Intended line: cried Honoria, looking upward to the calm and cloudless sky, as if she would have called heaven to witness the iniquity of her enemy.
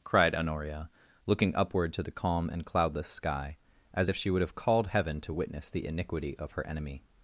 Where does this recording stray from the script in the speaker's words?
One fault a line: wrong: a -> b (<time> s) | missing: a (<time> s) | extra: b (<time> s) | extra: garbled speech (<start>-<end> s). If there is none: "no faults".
no faults